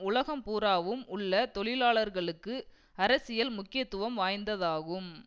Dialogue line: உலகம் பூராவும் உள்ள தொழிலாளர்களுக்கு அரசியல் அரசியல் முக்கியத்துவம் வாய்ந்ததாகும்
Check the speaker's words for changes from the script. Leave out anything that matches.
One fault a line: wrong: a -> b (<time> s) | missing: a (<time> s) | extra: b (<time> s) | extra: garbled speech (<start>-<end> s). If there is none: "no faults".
missing: அரசியல் (3.5 s)